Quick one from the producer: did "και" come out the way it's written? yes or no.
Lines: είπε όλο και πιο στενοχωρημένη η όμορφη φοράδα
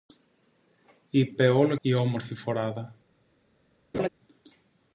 no